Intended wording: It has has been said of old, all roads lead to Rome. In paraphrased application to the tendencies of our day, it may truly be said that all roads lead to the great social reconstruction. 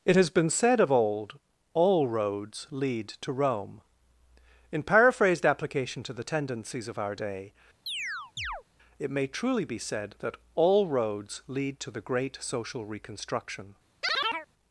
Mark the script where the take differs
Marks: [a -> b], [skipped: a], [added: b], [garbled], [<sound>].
It has [skipped: has] been said of old, all roads lead to Rome. In paraphrased application to the tendencies of our day, [chirp] it may truly be said that all roads lead to the great social reconstruction. [chirp]